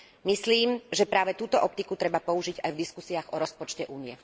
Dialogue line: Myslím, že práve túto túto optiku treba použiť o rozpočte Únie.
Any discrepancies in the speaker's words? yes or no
yes